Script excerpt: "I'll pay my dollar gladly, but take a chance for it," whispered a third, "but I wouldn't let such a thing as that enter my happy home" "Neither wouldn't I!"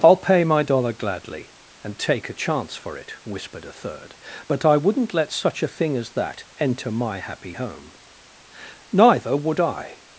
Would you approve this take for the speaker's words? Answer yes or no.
no